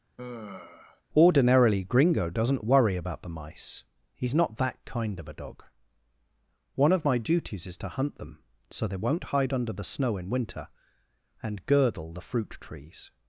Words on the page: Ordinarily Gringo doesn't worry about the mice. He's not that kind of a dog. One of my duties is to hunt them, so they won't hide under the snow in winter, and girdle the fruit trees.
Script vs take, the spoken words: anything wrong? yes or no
no